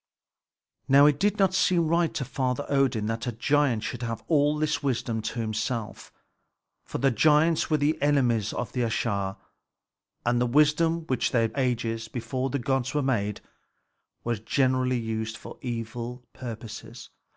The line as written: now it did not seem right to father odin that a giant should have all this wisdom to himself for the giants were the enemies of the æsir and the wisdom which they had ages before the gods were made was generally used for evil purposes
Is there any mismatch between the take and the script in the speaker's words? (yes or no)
no